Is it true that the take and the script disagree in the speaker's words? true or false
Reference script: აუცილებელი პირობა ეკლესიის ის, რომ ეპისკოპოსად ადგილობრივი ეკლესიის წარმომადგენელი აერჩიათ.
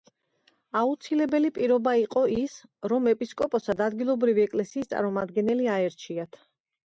true